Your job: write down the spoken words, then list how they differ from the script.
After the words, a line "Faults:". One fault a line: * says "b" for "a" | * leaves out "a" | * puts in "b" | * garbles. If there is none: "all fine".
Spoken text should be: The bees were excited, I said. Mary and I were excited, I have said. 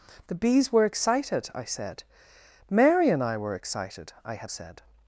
The bees were excited, I said. Mary and I were excited, I have said.
Faults:
all fine